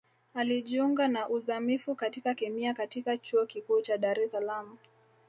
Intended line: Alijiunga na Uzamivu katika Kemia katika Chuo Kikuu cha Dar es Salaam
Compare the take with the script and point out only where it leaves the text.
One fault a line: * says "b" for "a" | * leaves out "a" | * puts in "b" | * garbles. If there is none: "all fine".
all fine